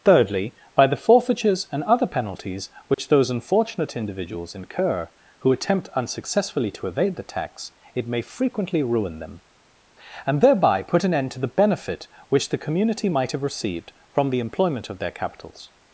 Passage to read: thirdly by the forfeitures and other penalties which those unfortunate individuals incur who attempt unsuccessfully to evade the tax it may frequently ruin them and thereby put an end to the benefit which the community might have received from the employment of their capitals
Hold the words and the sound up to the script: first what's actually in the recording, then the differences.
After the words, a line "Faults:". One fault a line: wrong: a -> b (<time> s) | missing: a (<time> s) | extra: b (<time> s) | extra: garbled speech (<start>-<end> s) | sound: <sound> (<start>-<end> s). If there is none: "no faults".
thirdly by the forfeitures and other penalties which those unfortunate individuals incur who attempt unsuccessfully to evade the tax it may frequently ruin them and thereby put an end to the benefit which the community might have received from the employment of their capitals
Faults:
sound: dropout (2.9-3.0 s)